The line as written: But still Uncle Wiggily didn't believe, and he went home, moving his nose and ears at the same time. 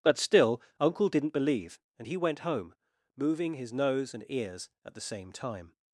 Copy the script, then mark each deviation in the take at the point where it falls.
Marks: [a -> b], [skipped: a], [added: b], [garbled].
But still Uncle [skipped: Wiggily] didn't believe, and he went home, moving his nose and ears at the same time.